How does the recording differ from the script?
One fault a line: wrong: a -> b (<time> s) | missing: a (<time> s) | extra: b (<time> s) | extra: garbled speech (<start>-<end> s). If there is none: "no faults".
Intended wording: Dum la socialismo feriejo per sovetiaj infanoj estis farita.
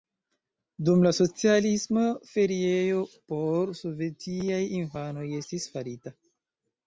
wrong: per -> por (3.3 s)